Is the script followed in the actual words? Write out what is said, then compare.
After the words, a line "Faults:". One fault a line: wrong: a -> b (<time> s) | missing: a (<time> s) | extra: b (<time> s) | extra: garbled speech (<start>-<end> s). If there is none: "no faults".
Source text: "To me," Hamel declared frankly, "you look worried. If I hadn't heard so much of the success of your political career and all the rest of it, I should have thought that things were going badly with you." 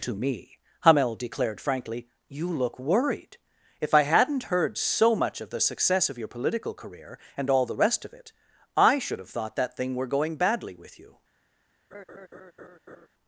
"To me," Hamel declared frankly, "you look worried. If I hadn't heard so much of the success of your political career and all the rest of it, I should have thought that thing were going badly with you."
Faults:
wrong: things -> thing (9.8 s)